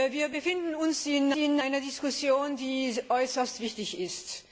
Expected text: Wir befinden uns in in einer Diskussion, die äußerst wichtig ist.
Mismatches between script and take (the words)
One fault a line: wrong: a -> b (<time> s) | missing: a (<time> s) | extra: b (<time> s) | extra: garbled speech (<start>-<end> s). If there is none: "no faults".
no faults